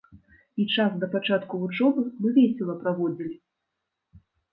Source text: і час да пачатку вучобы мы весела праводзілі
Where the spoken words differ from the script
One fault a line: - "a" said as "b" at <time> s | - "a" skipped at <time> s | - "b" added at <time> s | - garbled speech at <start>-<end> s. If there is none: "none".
none